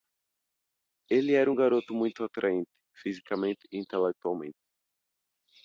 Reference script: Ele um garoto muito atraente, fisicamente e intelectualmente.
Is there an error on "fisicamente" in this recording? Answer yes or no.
no